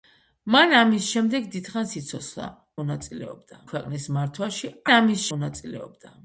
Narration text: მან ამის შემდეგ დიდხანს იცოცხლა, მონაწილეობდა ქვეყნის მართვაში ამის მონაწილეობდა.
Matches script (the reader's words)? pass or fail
pass